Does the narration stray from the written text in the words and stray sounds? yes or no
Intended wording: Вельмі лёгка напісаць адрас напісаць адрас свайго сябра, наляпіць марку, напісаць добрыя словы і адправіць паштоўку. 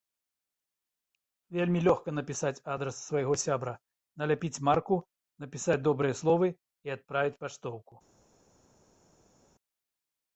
yes